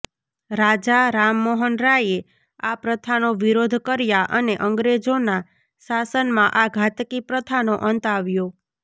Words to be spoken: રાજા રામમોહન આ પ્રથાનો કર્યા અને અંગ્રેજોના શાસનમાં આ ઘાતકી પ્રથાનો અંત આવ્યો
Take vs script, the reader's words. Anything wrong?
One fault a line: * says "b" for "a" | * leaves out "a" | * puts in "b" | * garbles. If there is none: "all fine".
* puts in "રાયે"
* puts in "વિરોધ"